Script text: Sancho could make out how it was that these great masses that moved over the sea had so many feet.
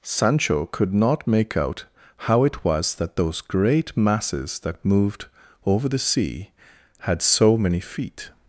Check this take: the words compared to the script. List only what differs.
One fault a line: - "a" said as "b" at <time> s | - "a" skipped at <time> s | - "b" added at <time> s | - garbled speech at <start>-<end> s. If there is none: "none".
- "not" added at 0.9 s
- "these" said as "those" at 3.2 s